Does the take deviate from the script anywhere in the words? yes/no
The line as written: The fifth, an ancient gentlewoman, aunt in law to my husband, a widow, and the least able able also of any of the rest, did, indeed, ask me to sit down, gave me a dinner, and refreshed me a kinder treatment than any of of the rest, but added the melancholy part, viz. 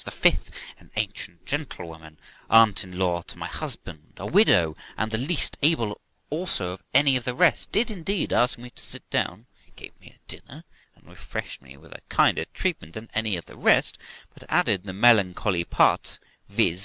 yes